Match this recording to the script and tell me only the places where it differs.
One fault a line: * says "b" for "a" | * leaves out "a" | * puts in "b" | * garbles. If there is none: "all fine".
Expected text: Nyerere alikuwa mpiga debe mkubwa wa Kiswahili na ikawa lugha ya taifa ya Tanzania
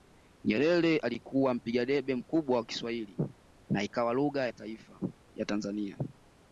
all fine